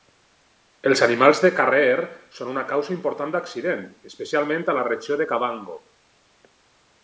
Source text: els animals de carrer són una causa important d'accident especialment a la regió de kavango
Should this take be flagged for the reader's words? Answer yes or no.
no